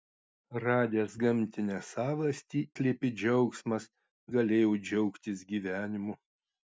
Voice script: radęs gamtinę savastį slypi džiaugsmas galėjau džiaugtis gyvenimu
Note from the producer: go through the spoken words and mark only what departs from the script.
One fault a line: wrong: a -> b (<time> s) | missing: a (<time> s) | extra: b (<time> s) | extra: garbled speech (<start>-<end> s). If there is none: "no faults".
no faults